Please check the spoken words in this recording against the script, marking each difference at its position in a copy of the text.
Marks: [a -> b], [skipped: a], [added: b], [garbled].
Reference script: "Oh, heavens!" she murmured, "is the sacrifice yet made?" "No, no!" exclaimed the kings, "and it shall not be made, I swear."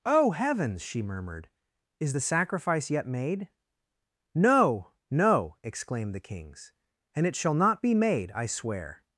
"Oh, heavens!" she murmured, "is the sacrifice yet made?" "No, no!" exclaimed the kings, "and it shall not be made, I swear."